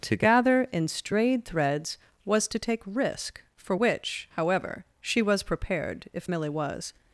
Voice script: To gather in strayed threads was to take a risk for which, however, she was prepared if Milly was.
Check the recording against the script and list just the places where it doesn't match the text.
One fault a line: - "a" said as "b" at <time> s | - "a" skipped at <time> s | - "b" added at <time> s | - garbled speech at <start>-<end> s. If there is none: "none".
- "a" skipped at 2.8 s